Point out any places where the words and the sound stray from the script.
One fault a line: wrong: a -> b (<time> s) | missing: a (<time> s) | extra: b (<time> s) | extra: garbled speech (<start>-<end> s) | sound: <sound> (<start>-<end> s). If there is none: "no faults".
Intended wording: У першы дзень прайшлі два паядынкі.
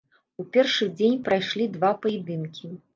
no faults